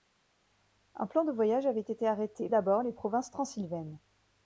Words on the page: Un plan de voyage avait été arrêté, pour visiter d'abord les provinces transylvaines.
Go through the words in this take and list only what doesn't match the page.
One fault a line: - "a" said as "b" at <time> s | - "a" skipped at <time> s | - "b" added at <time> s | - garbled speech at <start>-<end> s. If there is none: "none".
- "pour visiter" skipped at 2.5 s